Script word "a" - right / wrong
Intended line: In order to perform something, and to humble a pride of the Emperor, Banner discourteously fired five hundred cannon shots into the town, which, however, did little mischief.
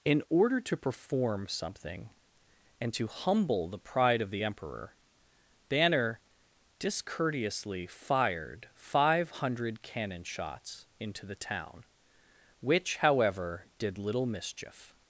wrong